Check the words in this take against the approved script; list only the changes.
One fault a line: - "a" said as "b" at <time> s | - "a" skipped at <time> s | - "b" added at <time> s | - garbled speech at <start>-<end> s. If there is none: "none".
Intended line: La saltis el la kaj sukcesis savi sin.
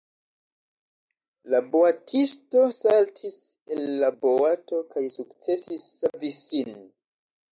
- "boatisto" added at 1.7 s
- "boato" added at 4.3 s